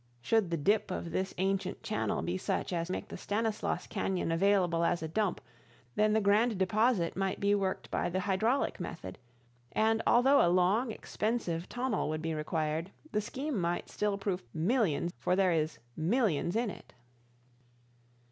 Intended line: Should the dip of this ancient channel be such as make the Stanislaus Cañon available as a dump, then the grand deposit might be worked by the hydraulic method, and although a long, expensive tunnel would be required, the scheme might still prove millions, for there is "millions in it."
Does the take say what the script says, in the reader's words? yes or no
yes